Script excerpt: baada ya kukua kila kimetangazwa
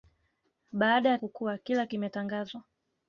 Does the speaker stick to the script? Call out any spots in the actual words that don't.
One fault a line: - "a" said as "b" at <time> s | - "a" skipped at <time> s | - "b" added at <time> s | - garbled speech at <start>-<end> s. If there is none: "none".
none